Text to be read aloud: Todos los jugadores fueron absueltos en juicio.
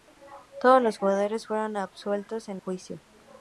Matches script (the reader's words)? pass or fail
pass